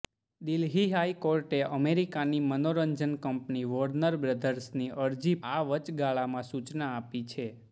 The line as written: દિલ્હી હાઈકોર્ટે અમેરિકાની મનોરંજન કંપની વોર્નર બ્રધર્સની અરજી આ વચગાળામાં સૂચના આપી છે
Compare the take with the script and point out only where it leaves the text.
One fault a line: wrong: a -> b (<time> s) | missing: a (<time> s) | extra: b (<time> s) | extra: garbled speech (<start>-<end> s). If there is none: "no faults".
no faults